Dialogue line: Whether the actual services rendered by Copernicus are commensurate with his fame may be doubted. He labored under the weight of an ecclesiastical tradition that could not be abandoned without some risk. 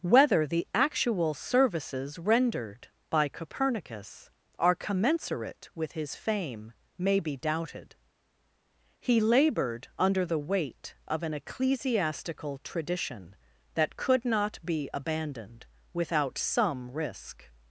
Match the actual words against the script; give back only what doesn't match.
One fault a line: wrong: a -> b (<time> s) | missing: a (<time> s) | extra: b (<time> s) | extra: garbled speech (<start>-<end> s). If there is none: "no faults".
no faults